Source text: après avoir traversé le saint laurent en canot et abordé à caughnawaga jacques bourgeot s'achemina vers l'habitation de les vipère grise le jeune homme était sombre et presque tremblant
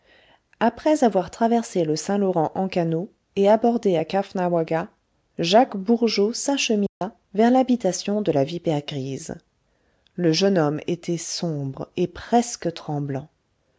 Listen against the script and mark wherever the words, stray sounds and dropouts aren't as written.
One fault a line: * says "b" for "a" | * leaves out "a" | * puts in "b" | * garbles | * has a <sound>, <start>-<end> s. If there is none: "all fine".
* has a dropout, 6.9-7.0 s
* says "la" for "les"